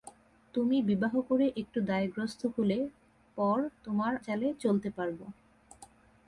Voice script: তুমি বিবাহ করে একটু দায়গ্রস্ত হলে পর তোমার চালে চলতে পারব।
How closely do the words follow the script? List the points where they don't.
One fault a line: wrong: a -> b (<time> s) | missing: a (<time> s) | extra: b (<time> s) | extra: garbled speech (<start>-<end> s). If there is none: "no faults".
no faults